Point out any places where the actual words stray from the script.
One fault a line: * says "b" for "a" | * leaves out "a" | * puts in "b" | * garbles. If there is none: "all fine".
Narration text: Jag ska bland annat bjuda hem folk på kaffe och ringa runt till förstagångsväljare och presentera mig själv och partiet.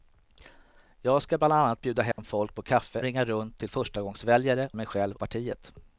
* leaves out "och"
* leaves out "och presentera"
* leaves out "och"